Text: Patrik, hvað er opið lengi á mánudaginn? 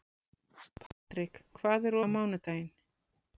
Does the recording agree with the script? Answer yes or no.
no